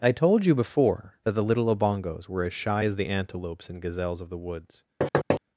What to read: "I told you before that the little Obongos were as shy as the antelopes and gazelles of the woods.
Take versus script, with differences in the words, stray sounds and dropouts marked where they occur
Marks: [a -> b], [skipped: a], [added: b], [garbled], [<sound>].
"I told you before that the little Obongos were as shy as the antelopes and gazelles of the woods. [thud]